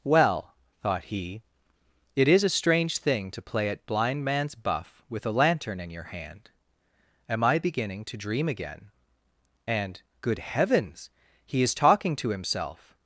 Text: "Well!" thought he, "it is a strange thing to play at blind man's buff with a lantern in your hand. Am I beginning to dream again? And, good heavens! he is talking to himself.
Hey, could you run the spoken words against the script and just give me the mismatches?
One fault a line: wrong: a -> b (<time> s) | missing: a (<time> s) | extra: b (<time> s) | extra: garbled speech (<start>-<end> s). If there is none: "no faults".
no faults